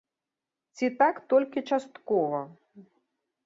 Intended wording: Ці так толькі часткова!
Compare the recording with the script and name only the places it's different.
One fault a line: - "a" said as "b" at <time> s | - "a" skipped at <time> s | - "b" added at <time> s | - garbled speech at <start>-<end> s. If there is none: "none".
none